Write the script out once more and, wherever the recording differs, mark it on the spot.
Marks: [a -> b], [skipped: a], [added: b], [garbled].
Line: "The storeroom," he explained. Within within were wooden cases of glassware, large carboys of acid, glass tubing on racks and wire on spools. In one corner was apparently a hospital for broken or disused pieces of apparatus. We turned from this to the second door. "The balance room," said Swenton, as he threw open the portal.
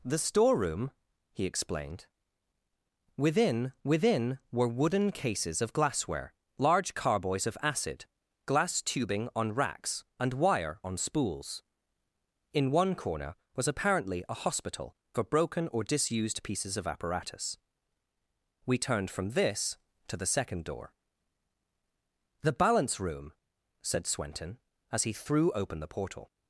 "The storeroom," he explained. Within within were wooden cases of glassware, large carboys of acid, glass tubing on racks and wire on spools. In one corner was apparently a hospital for broken or disused pieces of apparatus. We turned from this to the second door. "The balance room," said Swenton, as he threw open the portal.